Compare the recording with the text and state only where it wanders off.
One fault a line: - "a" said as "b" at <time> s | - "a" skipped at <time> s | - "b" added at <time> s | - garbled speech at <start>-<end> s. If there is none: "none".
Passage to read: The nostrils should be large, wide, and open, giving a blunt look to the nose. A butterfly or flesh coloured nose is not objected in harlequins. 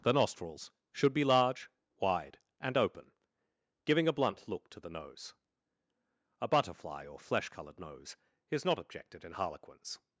none